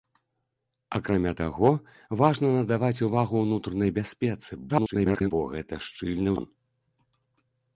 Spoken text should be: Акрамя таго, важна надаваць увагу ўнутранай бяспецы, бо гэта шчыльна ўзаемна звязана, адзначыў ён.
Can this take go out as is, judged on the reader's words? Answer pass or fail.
fail